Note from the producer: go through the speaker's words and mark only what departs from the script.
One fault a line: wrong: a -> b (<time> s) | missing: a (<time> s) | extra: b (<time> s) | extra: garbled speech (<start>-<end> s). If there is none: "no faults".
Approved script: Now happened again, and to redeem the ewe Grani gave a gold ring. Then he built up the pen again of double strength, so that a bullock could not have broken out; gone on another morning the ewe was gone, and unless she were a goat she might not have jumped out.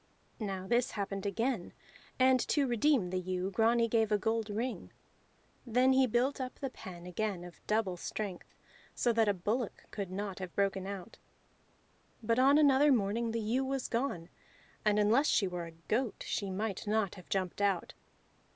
extra: this (0.7 s)
wrong: gone -> but (12.2 s)